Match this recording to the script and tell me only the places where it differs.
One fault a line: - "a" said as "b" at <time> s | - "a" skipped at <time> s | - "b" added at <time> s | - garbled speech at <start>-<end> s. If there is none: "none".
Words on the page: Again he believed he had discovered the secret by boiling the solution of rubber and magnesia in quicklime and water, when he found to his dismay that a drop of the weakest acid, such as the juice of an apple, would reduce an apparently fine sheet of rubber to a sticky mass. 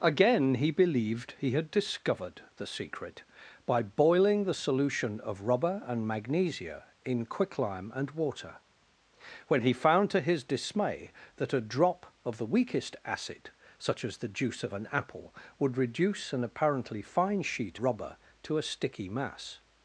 - "of" skipped at 17.8 s